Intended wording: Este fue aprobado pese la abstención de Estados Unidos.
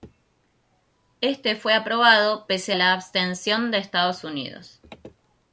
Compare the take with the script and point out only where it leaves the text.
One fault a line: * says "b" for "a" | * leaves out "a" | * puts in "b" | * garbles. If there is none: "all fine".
all fine